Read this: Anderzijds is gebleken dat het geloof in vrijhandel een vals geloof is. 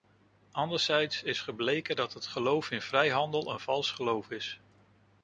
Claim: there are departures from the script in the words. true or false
false